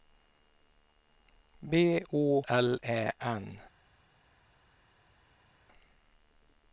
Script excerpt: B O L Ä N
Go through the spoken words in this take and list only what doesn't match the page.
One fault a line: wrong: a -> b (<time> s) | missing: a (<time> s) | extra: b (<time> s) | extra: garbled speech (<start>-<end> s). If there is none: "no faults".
no faults